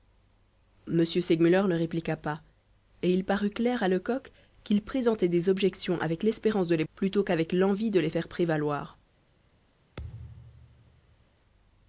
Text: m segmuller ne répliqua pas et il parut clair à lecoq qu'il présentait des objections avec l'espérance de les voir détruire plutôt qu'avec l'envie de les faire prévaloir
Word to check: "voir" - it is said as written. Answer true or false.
false